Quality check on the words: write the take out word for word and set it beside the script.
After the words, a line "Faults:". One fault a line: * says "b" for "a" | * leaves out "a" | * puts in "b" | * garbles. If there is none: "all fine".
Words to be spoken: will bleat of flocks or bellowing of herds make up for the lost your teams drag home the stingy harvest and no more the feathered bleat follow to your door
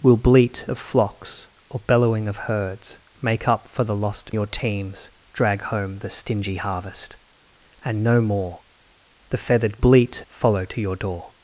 will bleat of flocks or bellowing of herds make up for the lost your teams drag home the stingy harvest and no more the feathered bleat follow to your door
Faults:
all fine